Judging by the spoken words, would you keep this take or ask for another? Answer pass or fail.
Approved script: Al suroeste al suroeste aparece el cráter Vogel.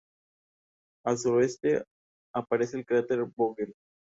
fail